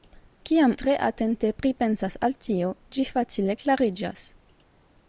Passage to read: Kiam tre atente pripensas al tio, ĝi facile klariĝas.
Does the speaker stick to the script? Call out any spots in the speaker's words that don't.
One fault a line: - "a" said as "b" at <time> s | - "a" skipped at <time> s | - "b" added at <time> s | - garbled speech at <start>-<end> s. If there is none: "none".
none